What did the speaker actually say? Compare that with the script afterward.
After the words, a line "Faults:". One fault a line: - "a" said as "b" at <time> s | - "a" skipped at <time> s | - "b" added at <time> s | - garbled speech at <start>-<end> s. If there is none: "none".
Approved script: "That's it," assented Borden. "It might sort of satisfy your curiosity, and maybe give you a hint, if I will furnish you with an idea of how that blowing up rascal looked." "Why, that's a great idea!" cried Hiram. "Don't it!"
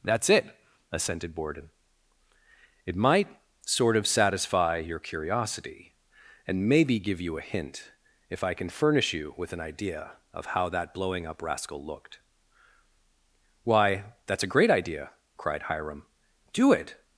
"That's it," assented Borden. "It might sort of satisfy your curiosity, and maybe give you a hint, if I can furnish you with an idea of how that blowing up rascal looked." "Why, that's a great idea!" cried Hiram. "Do it!"
Faults:
- "will" said as "can" at 8.5 s
- "Don't" said as "Do" at 16.5 s